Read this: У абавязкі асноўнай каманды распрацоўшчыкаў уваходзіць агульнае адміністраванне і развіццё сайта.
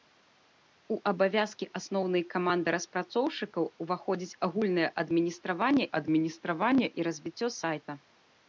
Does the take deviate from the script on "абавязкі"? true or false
false